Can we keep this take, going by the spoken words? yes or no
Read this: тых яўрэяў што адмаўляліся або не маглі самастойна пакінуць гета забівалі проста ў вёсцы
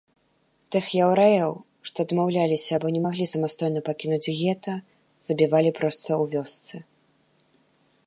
yes